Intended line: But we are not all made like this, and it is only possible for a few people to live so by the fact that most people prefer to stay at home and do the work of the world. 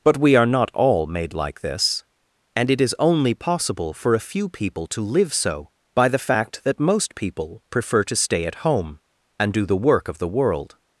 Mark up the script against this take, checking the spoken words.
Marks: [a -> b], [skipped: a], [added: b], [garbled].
But we are not all made like this, and it is only possible for a few people to live so by the fact that most people prefer to stay at home and do the work of the world.